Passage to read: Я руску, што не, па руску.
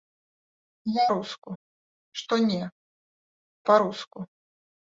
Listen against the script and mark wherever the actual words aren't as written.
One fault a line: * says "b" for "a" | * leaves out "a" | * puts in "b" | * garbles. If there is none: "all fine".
all fine